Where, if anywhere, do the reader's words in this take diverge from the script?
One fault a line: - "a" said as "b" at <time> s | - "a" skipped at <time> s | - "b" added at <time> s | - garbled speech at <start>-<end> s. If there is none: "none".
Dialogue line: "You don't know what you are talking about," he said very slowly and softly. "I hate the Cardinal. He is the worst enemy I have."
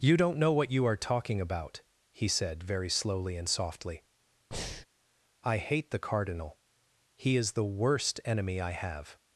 none